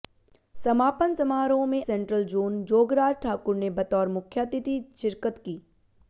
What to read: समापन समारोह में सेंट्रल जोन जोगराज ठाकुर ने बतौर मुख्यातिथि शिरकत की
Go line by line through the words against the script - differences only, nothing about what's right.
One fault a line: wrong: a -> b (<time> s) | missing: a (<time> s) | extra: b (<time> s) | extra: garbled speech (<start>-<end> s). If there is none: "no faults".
no faults